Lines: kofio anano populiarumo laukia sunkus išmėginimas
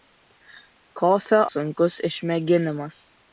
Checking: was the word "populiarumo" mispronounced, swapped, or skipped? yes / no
yes